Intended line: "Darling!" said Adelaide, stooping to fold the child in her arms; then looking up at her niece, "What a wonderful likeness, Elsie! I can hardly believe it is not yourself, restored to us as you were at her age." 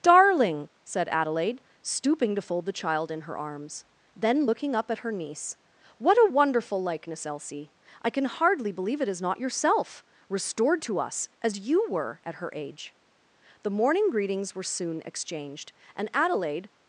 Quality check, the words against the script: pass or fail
fail